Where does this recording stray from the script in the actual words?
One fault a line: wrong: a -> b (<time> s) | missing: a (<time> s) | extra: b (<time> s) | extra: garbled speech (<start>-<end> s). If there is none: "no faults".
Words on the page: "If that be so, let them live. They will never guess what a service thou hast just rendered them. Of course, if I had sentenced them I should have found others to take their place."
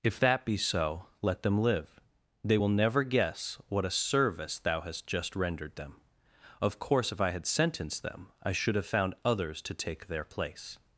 no faults